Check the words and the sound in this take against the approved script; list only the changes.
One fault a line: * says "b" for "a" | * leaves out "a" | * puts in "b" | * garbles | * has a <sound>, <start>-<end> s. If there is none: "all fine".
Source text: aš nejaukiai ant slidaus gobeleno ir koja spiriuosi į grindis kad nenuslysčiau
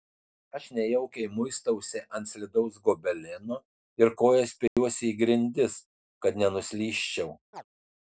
* puts in "muistausi"
* has a dropout, 4.7-4.8 s
* has a chirp, 7.5-7.6 s